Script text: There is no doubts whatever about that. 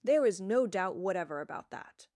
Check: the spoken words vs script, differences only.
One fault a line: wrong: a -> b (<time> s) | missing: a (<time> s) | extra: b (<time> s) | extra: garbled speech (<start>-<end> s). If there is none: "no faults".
wrong: doubts -> doubt (0.7 s)